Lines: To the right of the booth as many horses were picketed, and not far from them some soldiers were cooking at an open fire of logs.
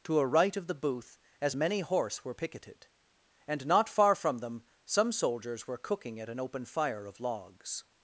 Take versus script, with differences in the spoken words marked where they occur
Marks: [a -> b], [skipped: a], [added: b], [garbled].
To [the -> a] right of the booth as many [horses -> horse] were picketed, and not far from them some soldiers were cooking at an open fire of logs.